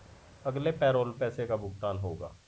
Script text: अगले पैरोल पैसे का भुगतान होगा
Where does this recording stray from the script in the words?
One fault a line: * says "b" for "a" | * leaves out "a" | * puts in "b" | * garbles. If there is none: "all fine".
all fine